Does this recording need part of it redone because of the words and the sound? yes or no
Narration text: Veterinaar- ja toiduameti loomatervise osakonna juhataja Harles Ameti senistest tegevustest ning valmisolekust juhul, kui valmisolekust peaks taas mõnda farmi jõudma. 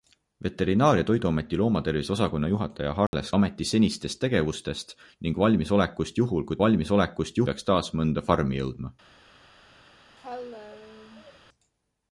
yes